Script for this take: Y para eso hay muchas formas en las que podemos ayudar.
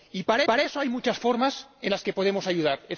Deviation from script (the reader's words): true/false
true